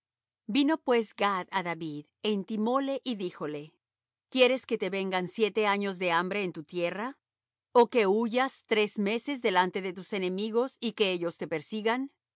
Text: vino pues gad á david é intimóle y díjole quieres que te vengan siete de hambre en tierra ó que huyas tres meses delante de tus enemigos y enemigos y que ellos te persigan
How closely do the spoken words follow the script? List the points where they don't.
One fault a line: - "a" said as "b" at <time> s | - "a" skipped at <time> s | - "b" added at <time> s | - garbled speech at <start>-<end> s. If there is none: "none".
- "años" added at 5.7 s
- "tu" added at 6.5 s
- "enemigos y" skipped at 10.9 s